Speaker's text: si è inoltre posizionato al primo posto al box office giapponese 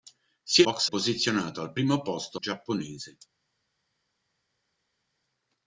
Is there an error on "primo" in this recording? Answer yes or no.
no